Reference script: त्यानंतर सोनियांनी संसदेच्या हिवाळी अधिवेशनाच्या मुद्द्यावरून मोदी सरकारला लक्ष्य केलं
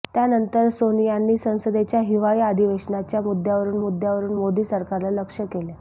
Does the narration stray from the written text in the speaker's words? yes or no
yes